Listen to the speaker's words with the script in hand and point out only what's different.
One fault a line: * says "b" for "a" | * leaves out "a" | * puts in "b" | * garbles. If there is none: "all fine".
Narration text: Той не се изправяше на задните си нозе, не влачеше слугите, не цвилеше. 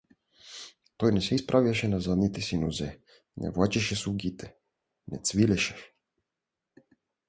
all fine